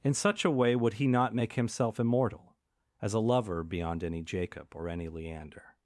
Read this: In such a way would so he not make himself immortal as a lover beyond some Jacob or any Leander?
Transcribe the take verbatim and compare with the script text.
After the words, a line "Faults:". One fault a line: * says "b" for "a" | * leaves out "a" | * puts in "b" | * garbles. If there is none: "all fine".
In such a way would he not make himself immortal as a lover beyond any Jacob or any Leander?
Faults:
* leaves out "so"
* says "any" for "some"